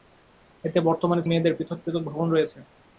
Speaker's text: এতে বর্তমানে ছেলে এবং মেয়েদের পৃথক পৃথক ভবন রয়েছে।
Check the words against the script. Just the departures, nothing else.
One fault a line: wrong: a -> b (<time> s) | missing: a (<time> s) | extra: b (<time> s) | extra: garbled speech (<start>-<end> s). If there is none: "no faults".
missing: ছেলে এবং (1.2 s)